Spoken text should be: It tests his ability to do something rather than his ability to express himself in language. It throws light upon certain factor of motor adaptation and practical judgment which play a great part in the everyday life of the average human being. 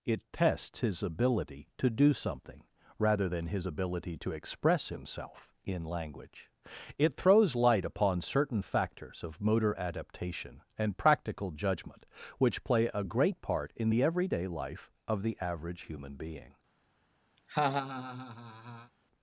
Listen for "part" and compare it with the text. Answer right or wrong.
right